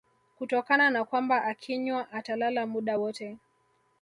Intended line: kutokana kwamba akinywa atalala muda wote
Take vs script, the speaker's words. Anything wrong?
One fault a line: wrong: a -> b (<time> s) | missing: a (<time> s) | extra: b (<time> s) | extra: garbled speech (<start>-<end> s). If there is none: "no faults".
extra: na (0.9 s)